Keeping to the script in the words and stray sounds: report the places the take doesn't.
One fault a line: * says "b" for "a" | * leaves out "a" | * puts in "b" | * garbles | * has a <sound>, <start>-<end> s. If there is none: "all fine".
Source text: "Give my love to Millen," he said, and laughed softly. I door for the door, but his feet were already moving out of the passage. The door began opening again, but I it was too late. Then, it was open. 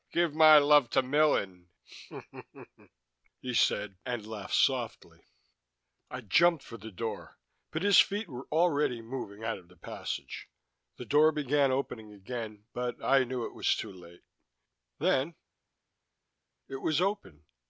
* says "jumped" for "door"
* puts in "knew"